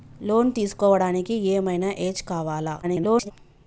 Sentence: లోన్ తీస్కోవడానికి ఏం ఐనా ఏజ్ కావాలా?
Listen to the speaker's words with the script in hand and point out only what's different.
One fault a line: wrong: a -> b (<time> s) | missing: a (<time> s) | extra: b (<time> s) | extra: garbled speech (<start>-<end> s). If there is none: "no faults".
extra: garbled speech (2.8-3.3 s)